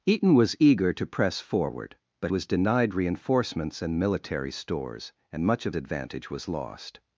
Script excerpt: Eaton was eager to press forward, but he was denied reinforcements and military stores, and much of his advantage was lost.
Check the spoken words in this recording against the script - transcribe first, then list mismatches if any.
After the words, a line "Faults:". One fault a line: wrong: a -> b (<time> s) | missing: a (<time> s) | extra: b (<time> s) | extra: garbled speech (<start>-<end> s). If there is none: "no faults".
Eaton was eager to press forward, but was denied reinforcements and military stores, and much of advantage was lost.
Faults:
missing: he (2.3 s)
missing: his (5.8 s)